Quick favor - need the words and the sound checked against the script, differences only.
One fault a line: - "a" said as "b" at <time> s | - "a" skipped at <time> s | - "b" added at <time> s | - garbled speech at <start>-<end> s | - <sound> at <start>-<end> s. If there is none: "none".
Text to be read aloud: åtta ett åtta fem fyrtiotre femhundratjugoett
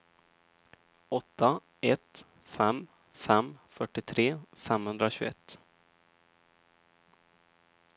- "åtta" said as "fem" at 2.4 s